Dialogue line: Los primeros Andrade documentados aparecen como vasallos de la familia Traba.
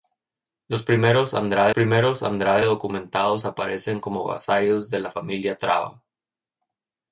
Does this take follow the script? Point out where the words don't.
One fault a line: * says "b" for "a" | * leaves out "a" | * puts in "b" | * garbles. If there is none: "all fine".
* puts in "primeros Andrade"